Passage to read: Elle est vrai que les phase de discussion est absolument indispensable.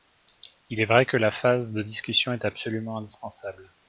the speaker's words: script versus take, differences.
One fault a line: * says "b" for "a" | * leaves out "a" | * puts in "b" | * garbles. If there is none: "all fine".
* says "Il" for "Elle"
* says "la" for "les"